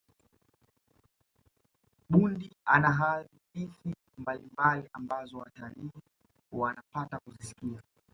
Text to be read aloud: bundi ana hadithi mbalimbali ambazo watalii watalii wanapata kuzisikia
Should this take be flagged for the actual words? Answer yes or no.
yes